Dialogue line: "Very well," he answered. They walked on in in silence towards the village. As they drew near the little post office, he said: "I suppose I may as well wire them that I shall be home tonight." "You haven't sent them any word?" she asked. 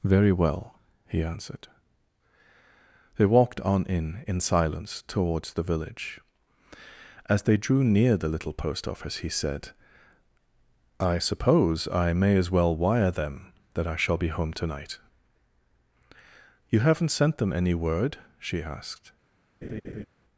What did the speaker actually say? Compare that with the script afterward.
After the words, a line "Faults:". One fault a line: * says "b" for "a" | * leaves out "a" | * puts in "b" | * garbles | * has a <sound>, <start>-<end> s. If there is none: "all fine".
"Very well," he answered. They walked on in in silence towards the village. As they drew near the little post office, he said: "I suppose I may as well wire them that I shall be home tonight." "You haven't sent them any word?" she asked.
Faults:
* has a laugh, 19.6-20.1 s